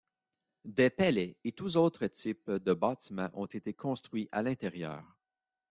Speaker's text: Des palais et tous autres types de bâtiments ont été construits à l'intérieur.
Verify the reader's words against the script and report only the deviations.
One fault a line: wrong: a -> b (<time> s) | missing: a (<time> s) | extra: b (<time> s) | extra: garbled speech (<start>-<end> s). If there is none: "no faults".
no faults